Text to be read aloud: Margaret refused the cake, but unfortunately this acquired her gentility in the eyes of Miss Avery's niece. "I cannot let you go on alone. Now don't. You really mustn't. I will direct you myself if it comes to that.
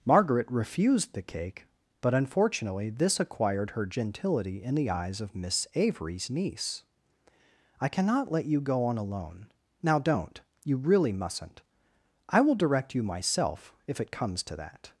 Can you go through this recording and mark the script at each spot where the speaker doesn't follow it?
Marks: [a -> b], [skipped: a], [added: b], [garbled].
Margaret refused the cake, but unfortunately this acquired her gentility in the eyes of Miss Avery's niece. "I cannot let you go on alone. Now don't. You really mustn't. I will direct you myself if it comes to that.